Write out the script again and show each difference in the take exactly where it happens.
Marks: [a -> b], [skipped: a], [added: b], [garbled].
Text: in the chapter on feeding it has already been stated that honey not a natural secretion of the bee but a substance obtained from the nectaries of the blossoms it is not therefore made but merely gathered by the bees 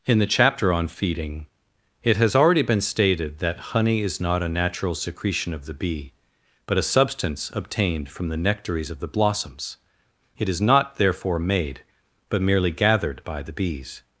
in the chapter on feeding it has already been stated that honey [added: is] not a natural secretion of the bee but a substance obtained from the nectaries of the blossoms it is not therefore made but merely gathered by the bees